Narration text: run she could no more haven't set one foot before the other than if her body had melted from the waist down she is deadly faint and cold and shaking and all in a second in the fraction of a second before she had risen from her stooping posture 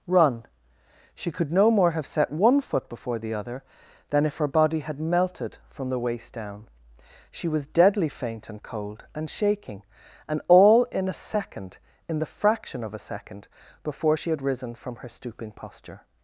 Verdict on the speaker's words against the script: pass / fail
fail